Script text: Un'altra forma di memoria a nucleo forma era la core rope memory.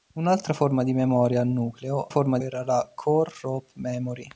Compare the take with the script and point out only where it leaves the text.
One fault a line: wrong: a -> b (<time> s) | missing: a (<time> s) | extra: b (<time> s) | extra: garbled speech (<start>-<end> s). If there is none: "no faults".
no faults